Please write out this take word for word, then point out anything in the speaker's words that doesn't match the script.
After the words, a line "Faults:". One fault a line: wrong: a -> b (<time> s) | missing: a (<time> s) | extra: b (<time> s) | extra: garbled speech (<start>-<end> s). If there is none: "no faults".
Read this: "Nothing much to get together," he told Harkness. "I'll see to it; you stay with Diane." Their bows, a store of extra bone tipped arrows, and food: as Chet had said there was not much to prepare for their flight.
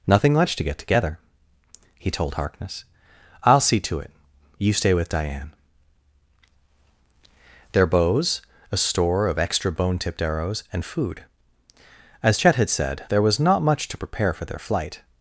"Nothing much to get together," he told Harkness. "I'll see to it; you stay with Diane." Their bows, a store of extra bone tipped arrows, and food: as Chet had said there was not much to prepare for their flight.
Faults:
no faults